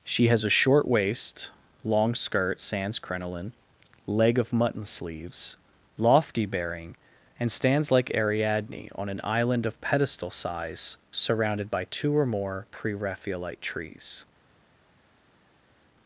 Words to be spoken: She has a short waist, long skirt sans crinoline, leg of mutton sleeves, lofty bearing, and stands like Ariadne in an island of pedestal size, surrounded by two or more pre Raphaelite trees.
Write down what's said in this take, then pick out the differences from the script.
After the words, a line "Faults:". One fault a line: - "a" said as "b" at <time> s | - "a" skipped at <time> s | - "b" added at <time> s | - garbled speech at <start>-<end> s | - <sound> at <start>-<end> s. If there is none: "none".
She has a short waist, long skirt sans crinoline, leg of mutton sleeves, lofty bearing, and stands like Ariadne on an island of pedestal size, surrounded by two or more pre Raphaelite trees.
Faults:
- "in" said as "on" at 8.9 s